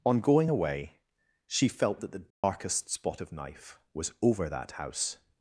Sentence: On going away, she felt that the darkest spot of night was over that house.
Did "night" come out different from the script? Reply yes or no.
yes